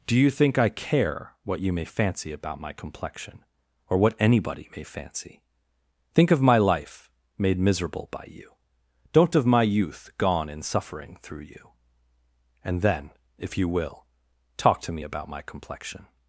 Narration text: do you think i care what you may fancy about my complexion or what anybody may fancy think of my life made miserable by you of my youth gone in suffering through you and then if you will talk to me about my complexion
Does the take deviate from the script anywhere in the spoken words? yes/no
yes